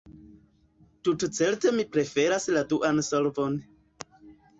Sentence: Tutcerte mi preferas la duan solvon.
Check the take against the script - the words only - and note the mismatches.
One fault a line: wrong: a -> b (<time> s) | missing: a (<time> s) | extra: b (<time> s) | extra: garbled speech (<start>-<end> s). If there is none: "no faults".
no faults